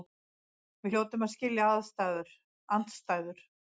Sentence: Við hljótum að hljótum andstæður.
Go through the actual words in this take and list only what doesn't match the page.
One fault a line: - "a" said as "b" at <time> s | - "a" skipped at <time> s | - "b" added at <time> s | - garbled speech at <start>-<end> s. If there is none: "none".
- "hljótum" said as "skilja" at 1.4 s